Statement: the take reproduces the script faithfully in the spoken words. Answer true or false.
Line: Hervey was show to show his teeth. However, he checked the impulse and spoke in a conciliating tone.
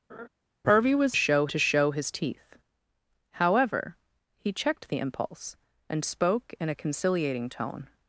true